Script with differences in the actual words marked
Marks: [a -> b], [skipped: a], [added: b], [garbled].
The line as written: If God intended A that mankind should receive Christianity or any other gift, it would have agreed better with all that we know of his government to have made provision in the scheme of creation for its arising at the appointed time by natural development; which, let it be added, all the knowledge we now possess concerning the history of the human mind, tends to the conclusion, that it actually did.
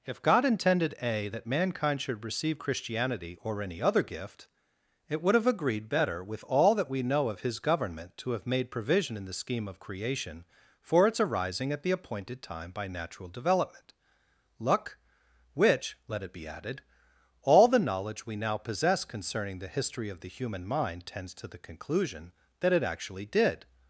If God intended A that mankind should receive Christianity or any other gift, it would have agreed better with all that we know of his government to have made provision in the scheme of creation for its arising at the appointed time by natural development; [added: luck] which, let it be added, all the knowledge we now possess concerning the history of the human mind, tends to the conclusion, that it actually did.